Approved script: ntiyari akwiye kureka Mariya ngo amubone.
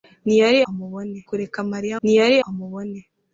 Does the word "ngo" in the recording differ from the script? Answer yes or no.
yes